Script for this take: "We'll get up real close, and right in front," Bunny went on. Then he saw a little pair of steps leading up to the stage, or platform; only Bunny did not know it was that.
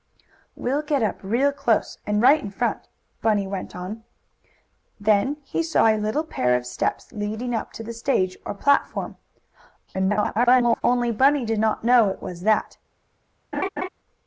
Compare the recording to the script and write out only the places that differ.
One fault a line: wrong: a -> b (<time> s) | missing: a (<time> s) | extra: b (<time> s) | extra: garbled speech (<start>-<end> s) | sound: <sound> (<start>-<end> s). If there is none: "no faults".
extra: garbled speech (9.9-10.8 s)
sound: laugh (13.5-13.9 s)